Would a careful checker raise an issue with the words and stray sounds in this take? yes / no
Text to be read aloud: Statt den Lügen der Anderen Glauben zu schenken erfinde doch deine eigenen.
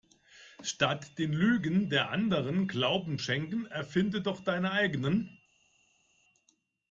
yes